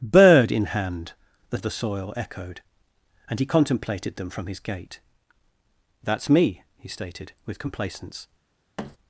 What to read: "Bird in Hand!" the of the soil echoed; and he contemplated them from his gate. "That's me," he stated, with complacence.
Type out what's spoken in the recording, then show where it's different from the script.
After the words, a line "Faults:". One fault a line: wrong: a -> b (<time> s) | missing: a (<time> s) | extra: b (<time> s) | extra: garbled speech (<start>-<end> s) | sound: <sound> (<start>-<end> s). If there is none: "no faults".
"Bird in Hand!" the of the soil echoed; and he contemplated them from his gate. "That's me," he stated, with complacence.
Faults:
sound: thud (8.8-9.0 s)